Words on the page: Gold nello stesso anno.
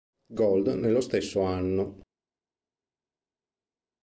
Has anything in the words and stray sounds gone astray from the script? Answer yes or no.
no